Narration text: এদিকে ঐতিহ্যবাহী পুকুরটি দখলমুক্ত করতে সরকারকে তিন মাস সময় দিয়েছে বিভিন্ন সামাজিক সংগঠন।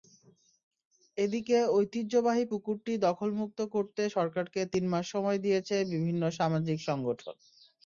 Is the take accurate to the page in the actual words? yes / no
yes